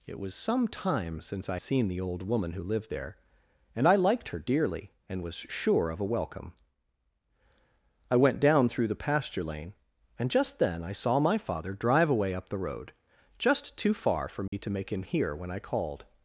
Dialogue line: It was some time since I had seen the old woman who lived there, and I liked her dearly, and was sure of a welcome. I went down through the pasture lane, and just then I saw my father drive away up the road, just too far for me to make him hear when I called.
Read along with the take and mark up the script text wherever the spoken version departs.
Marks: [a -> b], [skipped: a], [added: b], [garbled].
It was some time since I [skipped: had] seen the old woman who lived there, and I liked her dearly, and was sure of a welcome. I went down through the pasture lane, and just then I saw my father drive away up the road, just too far for me to make him hear when I called.